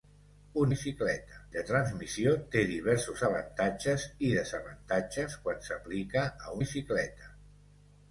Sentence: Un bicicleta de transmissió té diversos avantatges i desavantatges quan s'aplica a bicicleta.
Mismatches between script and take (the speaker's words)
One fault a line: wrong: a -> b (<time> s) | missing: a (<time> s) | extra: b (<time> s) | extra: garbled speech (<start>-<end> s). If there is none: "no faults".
no faults